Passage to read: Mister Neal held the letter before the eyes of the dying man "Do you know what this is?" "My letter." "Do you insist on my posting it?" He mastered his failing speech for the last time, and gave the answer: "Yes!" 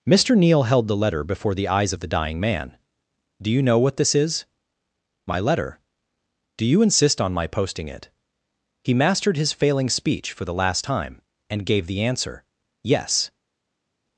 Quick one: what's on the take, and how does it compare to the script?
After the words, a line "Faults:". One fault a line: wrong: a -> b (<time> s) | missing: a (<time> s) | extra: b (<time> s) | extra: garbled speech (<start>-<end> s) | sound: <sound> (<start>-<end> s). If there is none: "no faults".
Mister Neal held the letter before the eyes of the dying man "Do you know what this is?" "My letter." "Do you insist on my posting it?" He mastered his failing speech for the last time, and gave the answer: "Yes!"
Faults:
no faults